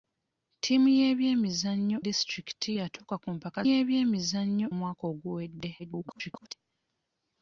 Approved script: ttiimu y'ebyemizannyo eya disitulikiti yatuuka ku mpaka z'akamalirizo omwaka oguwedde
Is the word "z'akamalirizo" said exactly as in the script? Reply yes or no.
no